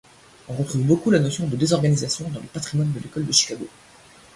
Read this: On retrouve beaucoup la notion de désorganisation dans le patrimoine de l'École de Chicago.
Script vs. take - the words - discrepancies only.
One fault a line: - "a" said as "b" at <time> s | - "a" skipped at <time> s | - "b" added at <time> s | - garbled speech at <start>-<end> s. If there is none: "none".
none